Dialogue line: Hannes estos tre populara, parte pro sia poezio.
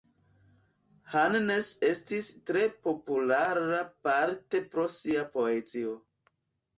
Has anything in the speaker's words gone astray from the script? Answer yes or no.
yes